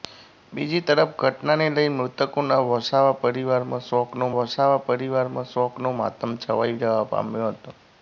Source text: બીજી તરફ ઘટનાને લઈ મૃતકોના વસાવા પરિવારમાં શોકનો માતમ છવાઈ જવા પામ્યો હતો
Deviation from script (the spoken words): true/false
true